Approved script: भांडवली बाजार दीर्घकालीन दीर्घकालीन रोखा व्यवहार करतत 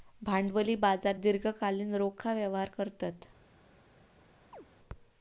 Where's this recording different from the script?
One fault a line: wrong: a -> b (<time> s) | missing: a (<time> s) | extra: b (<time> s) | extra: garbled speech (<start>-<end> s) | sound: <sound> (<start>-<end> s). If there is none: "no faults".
missing: दीर्घकालीन (1.9 s)
sound: chirp (4.5-4.7 s)